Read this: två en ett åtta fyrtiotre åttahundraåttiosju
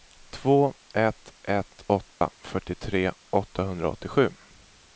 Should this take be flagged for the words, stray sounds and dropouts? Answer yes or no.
yes